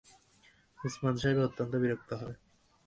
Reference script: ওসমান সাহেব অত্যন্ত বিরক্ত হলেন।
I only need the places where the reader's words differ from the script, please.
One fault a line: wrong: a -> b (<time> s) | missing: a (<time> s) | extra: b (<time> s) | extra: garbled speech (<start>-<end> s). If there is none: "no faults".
no faults